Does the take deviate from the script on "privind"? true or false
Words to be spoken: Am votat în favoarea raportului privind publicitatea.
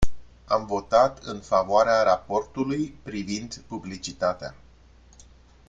false